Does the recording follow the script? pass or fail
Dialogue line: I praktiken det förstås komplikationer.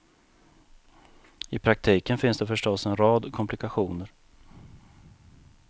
fail